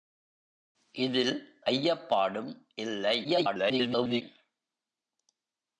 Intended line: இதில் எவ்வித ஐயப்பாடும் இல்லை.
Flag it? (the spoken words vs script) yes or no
yes